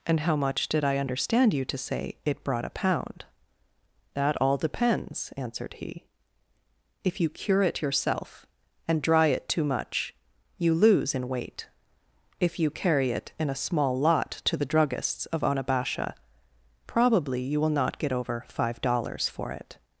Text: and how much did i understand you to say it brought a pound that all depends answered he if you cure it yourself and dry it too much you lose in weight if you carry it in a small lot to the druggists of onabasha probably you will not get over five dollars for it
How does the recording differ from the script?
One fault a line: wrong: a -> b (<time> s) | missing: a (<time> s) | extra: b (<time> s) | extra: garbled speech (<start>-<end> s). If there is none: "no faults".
no faults